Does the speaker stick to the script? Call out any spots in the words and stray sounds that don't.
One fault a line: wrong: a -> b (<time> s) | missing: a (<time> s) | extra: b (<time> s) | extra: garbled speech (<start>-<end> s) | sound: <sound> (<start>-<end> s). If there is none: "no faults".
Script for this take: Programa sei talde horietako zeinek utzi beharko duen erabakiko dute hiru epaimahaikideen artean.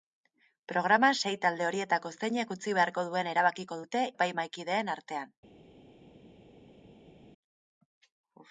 missing: hiru (4.0 s)